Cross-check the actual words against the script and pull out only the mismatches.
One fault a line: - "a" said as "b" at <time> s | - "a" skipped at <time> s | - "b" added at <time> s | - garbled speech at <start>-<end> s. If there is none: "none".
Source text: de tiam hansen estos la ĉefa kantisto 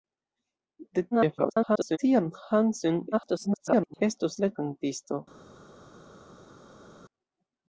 - garbled speech at 1.1-2.0 s
- garbled speech at 3.1-4.0 s
- "ĉefa" skipped at 4.5 s